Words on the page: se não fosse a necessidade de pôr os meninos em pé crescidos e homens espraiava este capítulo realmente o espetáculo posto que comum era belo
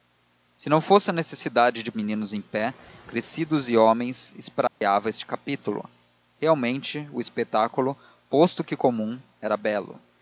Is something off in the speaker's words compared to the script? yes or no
yes